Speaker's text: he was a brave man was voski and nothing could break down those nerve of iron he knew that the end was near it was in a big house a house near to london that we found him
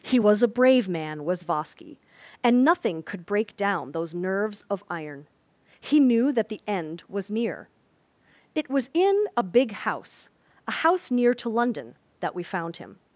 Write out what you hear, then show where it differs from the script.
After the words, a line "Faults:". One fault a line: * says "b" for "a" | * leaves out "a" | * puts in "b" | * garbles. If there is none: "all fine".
he was a brave man was voski and nothing could break down those nerves of iron he knew that the end was near it was in a big house a house near to london that we found him
Faults:
* says "nerves" for "nerve"